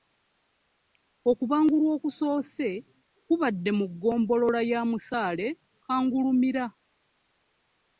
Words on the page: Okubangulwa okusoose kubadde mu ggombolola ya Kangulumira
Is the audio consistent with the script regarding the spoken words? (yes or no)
no